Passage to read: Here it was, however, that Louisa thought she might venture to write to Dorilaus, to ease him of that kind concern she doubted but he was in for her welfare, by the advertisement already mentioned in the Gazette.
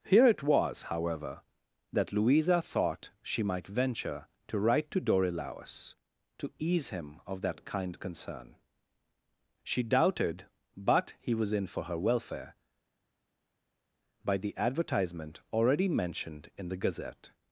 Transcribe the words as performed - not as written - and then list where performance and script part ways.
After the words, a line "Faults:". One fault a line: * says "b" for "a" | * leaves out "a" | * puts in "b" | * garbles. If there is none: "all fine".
Here it was, however, that Louisa thought she might venture to write to Dorilaus, to ease him of that kind concern she doubted but he was in for her welfare, by the advertisement already mentioned in the Gazette.
Faults:
all fine